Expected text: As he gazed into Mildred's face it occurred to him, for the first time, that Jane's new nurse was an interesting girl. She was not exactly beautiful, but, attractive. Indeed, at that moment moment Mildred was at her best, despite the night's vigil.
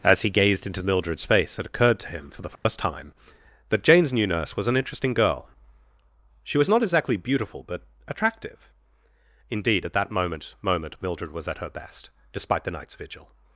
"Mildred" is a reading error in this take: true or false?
false